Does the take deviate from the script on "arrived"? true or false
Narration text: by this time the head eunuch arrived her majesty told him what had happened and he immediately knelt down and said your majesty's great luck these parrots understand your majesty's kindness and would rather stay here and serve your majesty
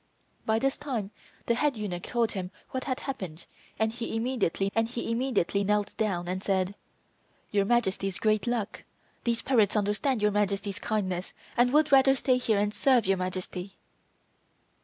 true